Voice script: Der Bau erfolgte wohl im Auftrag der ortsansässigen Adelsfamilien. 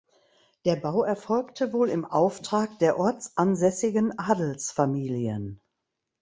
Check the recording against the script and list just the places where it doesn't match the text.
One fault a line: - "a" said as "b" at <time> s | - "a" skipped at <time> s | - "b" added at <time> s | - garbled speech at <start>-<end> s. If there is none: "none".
none